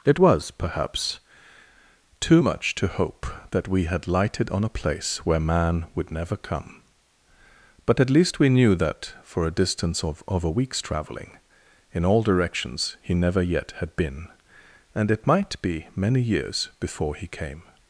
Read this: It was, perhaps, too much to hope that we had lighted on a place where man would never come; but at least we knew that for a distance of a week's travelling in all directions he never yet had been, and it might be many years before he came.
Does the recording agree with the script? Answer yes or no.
no